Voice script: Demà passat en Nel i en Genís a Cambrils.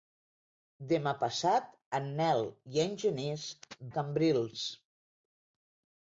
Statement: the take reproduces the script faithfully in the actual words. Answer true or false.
true